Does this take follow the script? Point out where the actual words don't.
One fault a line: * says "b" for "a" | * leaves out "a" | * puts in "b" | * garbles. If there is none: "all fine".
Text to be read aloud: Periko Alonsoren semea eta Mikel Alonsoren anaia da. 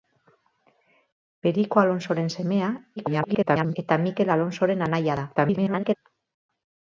* garbles
* garbles